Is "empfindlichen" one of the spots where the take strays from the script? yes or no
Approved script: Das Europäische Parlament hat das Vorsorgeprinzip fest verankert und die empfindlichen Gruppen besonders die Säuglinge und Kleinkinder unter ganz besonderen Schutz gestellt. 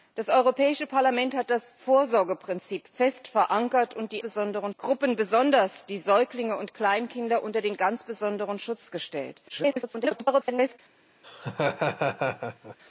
yes